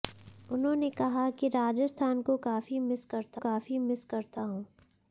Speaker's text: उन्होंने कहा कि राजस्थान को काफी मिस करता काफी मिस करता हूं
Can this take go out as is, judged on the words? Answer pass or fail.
pass